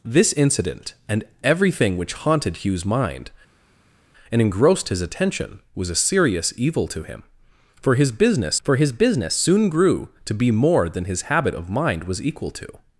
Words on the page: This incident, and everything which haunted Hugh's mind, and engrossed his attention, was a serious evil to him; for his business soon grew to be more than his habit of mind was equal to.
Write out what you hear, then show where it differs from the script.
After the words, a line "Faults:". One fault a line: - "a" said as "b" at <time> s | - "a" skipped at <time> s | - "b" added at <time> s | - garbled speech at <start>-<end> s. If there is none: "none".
This incident, and everything which haunted Hugh's mind, and engrossed his attention, was a serious evil to him; for his business for his business soon grew to be more than his habit of mind was equal to.
Faults:
- "for his business" added at 8.6 s